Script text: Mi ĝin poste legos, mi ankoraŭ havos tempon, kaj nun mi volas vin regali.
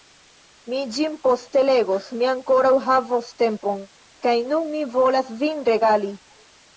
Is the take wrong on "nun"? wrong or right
right